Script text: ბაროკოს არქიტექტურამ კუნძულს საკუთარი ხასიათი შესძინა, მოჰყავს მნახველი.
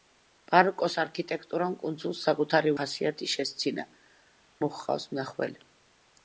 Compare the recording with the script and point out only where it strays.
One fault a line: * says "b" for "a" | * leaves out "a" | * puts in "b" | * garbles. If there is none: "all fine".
all fine